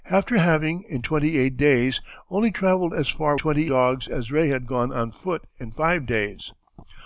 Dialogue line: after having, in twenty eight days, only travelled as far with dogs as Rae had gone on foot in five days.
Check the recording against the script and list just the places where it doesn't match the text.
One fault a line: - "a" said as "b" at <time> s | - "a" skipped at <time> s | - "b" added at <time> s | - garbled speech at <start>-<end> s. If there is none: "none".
- "with" said as "twenty" at 3.4 s